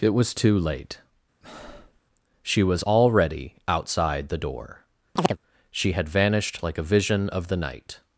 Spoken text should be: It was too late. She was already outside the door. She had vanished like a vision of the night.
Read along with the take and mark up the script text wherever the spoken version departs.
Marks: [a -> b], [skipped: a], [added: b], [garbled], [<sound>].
It was too late. [breath] She was already outside the door. [chirp] She had vanished like a vision of the night.